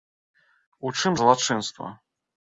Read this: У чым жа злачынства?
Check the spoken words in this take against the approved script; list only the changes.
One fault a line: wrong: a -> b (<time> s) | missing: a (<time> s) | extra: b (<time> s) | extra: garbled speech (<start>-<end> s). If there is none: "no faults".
missing: жа (1.1 s)